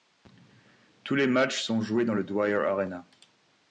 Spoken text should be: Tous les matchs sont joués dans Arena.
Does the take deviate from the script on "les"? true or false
false